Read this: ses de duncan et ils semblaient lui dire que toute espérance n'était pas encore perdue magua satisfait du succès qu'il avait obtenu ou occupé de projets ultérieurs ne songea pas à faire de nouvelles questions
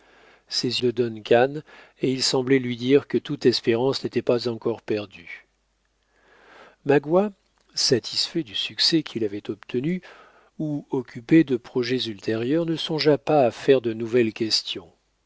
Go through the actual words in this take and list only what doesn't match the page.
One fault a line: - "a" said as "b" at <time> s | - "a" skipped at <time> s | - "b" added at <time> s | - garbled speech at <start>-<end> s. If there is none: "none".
none